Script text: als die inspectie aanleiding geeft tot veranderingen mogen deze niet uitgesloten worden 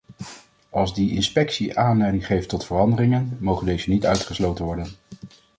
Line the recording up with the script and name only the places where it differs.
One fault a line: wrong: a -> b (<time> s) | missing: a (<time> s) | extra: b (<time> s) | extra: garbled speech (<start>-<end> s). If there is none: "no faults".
no faults